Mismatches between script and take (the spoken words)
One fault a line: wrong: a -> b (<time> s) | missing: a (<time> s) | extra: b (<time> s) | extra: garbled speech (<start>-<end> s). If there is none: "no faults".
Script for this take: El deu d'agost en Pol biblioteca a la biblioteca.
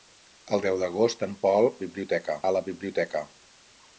no faults